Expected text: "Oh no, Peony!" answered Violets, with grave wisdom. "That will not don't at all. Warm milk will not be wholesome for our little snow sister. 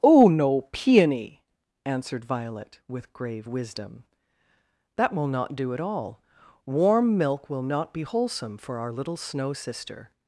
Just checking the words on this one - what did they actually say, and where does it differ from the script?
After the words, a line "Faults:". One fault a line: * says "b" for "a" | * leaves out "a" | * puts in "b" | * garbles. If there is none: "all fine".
"Oh no, Peony!" answered Violet, with grave wisdom. "That will not do at all. Warm milk will not be wholesome for our little snow sister.
Faults:
* says "Violet" for "Violets"
* says "do" for "don't"